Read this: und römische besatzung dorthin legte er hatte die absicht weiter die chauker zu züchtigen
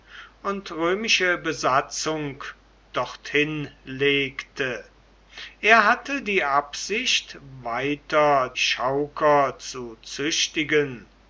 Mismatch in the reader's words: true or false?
true